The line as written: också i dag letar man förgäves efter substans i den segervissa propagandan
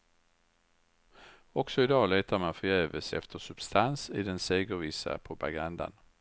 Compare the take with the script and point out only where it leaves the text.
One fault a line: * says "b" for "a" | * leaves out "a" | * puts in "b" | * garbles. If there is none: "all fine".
all fine